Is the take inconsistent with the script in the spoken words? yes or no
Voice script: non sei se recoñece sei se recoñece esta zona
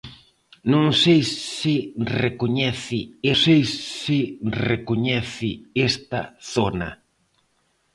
no